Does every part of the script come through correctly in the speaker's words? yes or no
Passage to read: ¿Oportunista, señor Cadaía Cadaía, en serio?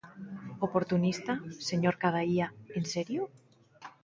no